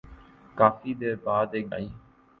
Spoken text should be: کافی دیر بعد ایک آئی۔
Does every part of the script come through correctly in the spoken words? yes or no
yes